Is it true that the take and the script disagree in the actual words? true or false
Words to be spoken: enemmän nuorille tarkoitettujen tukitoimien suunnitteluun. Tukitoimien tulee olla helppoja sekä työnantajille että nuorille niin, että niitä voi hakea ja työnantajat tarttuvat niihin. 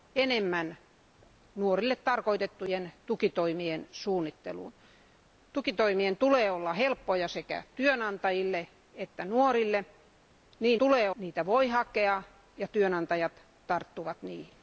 true